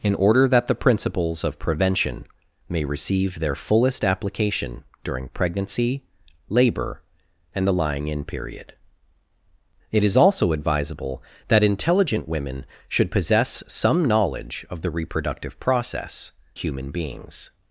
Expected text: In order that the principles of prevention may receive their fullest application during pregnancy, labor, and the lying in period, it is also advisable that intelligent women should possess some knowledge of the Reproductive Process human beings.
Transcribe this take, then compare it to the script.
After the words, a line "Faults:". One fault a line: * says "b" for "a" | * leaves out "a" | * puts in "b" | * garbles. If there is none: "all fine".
In order that the principles of prevention may receive their fullest application during pregnancy, labor, and the lying in period, it is also advisable that intelligent women should possess some knowledge of the Reproductive Process human beings.
Faults:
all fine